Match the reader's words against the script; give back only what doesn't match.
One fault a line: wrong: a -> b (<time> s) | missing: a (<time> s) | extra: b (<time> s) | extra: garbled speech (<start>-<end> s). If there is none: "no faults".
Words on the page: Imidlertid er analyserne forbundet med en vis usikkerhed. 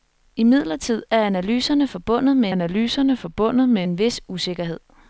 extra: analyserne forbundet med (2.5 s)